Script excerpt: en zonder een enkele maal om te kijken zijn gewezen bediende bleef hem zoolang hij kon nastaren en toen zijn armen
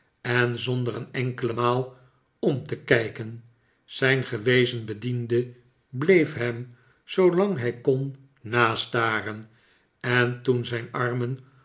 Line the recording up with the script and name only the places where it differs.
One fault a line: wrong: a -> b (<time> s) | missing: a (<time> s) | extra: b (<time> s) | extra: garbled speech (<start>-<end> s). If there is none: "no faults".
no faults